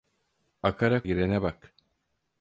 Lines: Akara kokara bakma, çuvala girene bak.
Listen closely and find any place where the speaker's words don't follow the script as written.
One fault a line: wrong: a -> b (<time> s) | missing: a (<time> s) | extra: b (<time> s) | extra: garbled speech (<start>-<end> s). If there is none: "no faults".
missing: kokara bakma çuvala (1.0 s)